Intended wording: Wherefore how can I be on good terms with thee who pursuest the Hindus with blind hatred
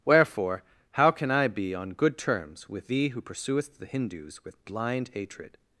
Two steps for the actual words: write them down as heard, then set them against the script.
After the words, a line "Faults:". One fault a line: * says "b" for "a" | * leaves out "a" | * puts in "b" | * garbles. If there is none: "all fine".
Wherefore how can I be on good terms with thee who pursuest the Hindus with blind hatred
Faults:
all fine